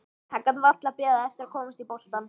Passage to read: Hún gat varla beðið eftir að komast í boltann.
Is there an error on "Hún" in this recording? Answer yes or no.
yes